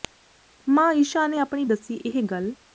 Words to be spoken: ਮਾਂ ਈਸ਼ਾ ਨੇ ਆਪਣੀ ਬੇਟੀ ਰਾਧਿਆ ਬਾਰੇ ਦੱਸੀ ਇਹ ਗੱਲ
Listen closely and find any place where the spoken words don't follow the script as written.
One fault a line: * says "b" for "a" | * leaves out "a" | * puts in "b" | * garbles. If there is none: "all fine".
* leaves out "ਬੇਟੀ ਰਾਧਿਆ ਬਾਰੇ"